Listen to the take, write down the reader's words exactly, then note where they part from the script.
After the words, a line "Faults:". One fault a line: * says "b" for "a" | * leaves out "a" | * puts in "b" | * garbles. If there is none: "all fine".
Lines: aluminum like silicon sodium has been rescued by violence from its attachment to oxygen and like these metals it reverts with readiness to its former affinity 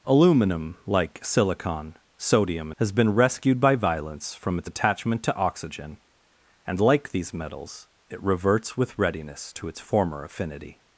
aluminum like silicon sodium has been rescued by violence from its attachment to oxygen and like these metals it reverts with readiness to its former affinity
Faults:
all fine